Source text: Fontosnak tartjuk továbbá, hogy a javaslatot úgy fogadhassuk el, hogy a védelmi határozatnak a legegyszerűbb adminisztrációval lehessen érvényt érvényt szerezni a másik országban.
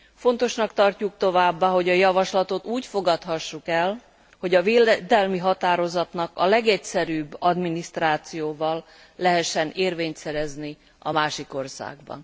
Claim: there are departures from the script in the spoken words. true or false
true